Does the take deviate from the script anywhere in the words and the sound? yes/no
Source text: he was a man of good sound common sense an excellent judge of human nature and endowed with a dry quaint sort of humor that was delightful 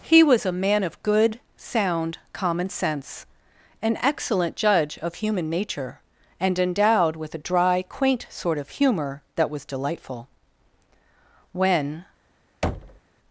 yes